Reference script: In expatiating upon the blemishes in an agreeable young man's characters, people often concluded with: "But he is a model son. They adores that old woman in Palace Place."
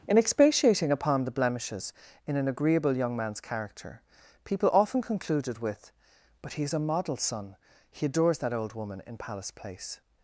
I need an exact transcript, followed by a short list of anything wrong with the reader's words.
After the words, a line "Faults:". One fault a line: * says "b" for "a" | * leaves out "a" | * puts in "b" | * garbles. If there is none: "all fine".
In expatiating upon the blemishes in an agreeable young man's character, people often concluded with: "But he is a model son. He adores that old woman in Palace Place."
Faults:
* says "character" for "characters"
* says "He" for "They"